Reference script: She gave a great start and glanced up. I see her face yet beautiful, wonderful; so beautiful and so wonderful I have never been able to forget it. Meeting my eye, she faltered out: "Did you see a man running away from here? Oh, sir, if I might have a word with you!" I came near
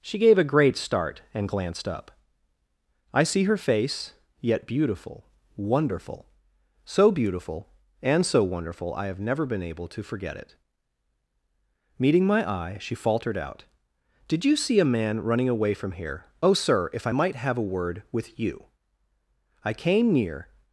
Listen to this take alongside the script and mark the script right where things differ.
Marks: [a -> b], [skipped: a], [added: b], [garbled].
She gave a great start and glanced up. I see her face yet beautiful, wonderful; so beautiful and so wonderful I have never been able to forget it. Meeting my eye, she faltered out: "Did you see a man running away from here? Oh, sir, if I might have a word with you!" I came near